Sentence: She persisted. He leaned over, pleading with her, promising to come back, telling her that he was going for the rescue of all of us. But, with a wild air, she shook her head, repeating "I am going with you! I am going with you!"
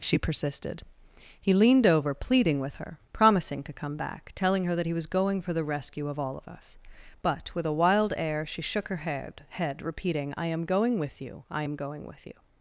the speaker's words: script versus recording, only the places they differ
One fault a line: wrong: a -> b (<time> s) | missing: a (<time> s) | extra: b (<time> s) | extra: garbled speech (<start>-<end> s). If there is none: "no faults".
extra: head (9.5 s)